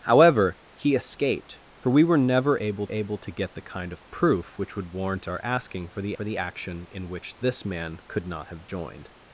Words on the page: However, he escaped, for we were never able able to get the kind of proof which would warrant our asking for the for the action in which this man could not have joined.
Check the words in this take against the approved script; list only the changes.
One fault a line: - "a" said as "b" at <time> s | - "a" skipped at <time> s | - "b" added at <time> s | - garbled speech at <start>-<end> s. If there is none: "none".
none